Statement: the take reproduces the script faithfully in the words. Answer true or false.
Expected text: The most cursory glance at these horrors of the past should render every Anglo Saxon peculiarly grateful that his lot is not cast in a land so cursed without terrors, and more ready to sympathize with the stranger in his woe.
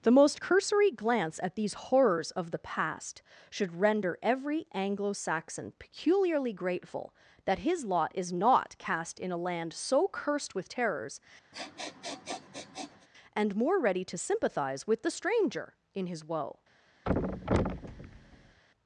false